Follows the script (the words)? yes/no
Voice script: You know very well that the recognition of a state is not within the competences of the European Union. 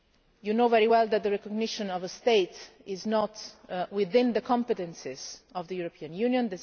yes